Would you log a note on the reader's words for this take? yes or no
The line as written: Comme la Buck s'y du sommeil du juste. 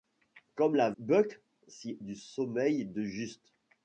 no